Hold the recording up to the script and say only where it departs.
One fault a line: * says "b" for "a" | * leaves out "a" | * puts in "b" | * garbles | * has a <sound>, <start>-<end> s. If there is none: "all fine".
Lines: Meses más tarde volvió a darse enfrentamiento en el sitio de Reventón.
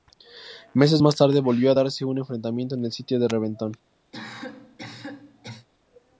* puts in "un"
* has a cough, 4.1-5.7 s